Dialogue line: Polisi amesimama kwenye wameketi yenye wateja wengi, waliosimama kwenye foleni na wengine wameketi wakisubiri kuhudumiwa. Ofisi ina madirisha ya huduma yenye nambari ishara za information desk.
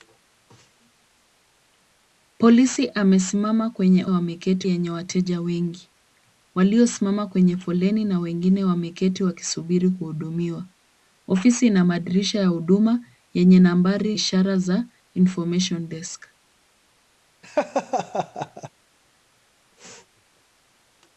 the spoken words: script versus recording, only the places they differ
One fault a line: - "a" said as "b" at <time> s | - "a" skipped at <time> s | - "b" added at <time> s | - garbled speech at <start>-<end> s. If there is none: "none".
none